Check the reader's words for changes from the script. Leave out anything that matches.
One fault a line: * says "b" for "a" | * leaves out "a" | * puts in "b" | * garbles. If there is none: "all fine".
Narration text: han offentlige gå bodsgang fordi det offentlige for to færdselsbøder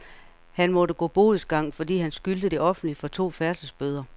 * says "måtte" for "offentlige"
* puts in "han skyldte"